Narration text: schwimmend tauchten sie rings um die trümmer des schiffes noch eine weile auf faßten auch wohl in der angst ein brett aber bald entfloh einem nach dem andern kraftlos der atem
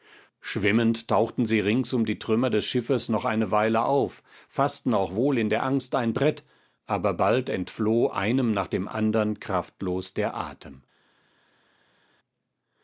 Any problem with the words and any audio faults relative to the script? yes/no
no